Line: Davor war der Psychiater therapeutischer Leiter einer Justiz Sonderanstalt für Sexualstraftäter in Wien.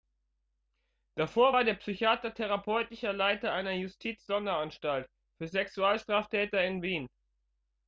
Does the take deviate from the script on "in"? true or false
false